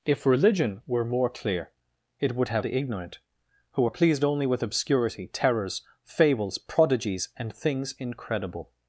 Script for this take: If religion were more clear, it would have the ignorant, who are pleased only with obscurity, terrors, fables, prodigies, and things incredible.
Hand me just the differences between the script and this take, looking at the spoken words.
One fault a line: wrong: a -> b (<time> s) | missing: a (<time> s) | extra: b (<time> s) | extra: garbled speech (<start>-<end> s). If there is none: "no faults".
no faults